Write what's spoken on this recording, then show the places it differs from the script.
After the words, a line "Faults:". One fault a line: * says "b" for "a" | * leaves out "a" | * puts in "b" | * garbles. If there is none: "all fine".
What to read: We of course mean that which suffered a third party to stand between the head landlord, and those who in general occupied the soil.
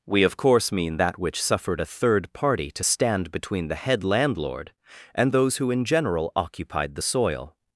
We of course mean that which suffered a third party to stand between the head landlord, and those who in general occupied the soil.
Faults:
all fine